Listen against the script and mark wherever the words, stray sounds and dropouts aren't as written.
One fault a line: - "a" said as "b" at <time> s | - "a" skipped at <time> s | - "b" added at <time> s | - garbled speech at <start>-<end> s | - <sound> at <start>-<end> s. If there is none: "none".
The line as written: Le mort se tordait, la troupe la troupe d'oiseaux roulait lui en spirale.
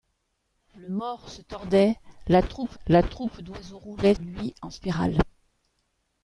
none